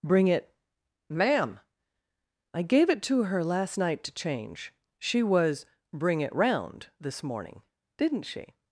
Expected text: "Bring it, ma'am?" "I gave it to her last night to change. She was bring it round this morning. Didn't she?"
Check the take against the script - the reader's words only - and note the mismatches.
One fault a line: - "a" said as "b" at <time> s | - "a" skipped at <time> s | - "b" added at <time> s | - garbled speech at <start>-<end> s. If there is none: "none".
none